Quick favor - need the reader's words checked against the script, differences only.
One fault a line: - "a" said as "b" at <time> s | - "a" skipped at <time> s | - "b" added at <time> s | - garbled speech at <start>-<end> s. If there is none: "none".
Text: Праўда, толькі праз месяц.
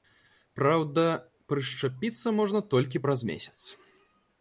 - "прышчапіцца можна" added at 1.5 s